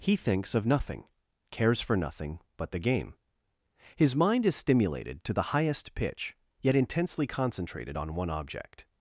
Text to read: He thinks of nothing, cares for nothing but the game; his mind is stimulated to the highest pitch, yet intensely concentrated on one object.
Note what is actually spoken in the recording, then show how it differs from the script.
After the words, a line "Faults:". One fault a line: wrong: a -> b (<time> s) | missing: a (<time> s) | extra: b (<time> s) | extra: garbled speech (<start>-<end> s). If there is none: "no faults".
He thinks of nothing, cares for nothing but the game; his mind is stimulated to the highest pitch, yet intensely concentrated on one object.
Faults:
no faults